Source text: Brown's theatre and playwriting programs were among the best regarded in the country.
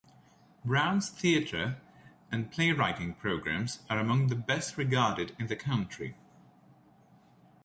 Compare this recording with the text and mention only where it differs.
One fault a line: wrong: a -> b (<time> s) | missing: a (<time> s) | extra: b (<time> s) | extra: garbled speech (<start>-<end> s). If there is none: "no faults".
wrong: were -> are (3.9 s)